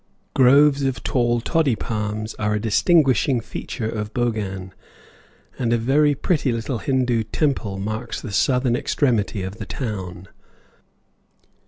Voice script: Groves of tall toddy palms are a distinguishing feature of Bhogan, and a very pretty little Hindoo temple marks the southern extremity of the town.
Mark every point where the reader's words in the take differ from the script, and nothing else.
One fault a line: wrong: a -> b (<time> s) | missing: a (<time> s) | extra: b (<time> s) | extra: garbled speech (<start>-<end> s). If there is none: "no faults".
no faults